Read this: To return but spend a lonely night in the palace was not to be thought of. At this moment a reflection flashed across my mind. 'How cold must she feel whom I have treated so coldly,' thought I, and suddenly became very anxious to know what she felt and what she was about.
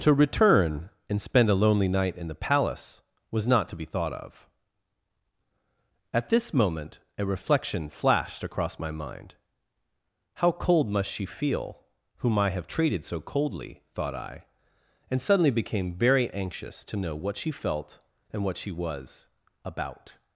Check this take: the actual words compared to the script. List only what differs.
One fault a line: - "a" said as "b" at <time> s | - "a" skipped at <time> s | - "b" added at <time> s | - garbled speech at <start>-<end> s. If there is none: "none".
- "but" said as "and" at 1.1 s